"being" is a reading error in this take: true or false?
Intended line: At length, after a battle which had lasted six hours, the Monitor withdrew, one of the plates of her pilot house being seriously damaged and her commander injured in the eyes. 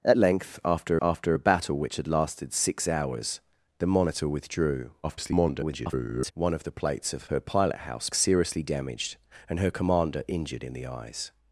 true